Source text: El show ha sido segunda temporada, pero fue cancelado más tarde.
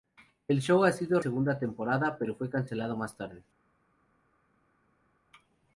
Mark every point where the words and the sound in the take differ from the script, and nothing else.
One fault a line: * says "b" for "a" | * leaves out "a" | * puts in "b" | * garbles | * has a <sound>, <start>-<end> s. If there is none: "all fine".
all fine